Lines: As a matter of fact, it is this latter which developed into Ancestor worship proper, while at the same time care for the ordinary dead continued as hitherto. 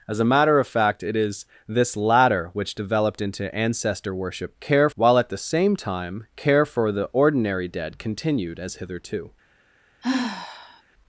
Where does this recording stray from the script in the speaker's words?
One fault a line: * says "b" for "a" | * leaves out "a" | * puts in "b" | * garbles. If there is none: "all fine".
* says "care" for "proper"